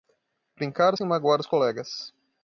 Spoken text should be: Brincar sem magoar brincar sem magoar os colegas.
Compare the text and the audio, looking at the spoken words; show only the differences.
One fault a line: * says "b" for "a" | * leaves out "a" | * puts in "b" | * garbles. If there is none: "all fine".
* leaves out "brincar sem magoar"